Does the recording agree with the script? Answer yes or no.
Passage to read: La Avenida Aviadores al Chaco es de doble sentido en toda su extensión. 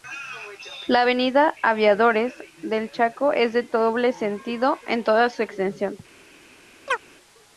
no